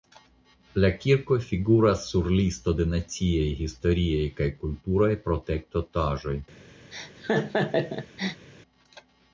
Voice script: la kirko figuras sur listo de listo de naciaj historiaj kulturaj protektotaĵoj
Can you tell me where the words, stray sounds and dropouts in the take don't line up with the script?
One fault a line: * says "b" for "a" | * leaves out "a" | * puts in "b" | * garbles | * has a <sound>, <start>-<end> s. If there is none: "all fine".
* leaves out "listo de"
* puts in "kaj"
* has a laugh, 6.9-8.5 s